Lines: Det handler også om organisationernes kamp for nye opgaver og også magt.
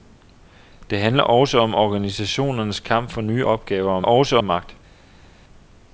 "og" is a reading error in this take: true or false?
false